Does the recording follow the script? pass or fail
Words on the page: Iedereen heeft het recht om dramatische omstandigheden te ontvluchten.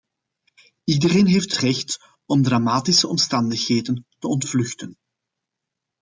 fail